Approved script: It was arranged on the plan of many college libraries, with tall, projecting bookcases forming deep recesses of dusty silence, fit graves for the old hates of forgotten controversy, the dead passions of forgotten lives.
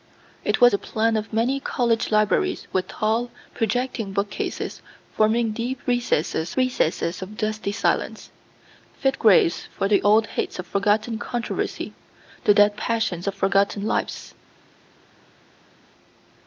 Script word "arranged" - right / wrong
wrong